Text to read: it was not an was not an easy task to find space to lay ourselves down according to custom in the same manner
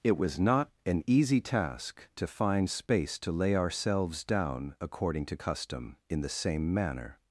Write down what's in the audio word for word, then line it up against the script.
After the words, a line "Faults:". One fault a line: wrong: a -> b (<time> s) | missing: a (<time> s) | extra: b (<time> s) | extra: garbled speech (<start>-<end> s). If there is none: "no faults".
it was not an easy task to find space to lay ourselves down according to custom in the same manner
Faults:
missing: was not an (1.0 s)